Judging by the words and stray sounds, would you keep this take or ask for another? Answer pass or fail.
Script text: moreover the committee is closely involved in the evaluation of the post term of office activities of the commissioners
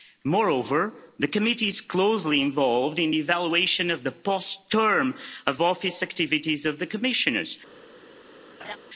fail